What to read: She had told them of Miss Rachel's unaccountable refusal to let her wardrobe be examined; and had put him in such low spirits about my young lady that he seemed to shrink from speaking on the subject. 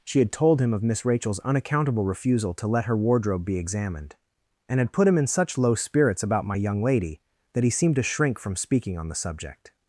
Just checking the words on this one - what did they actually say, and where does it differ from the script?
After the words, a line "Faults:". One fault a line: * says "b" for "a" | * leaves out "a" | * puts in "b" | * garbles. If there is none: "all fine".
She had told him of Miss Rachel's unaccountable refusal to let her wardrobe be examined; and had put him in such low spirits about my young lady that he seemed to shrink from speaking on the subject.
Faults:
* says "him" for "them"